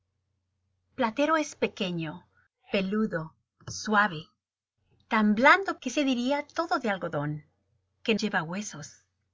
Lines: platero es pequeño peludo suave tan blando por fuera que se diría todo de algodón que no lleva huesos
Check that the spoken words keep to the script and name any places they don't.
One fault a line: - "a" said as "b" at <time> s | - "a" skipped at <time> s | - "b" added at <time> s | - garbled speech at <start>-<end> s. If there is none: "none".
- "por fuera" skipped at 5.8 s
- "no" skipped at 8.2 s